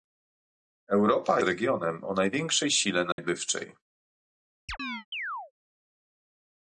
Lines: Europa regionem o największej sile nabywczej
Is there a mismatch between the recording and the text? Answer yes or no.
no